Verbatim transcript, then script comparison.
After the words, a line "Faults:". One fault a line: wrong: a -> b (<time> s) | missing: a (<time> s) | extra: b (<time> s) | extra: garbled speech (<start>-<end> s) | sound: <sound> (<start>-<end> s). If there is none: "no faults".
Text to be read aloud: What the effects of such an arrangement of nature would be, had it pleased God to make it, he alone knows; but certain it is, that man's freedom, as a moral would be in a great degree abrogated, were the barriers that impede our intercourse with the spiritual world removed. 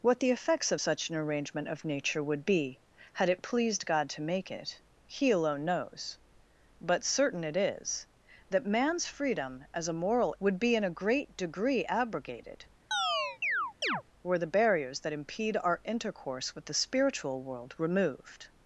What the effects of such an arrangement of nature would be, had it pleased God to make it, he alone knows; but certain it is, that man's freedom, as a moral would be in a great degree abrogated, were the barriers that impede our intercourse with the spiritual world removed.
Faults:
sound: chirp (12.9-14.0 s)